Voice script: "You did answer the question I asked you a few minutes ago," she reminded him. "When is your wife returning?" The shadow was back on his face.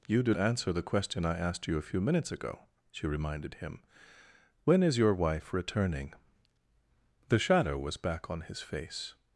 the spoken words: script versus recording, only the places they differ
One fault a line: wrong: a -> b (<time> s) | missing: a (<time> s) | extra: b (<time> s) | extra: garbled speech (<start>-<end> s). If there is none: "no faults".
no faults